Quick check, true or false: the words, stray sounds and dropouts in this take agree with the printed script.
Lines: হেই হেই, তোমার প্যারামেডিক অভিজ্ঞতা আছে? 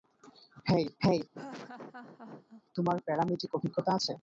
false